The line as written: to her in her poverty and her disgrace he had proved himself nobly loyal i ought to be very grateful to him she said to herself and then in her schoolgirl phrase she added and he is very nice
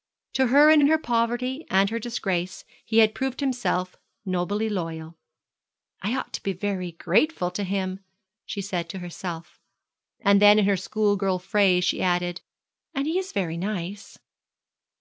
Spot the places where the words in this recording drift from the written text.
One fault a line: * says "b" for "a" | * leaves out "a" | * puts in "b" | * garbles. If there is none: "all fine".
* puts in "in"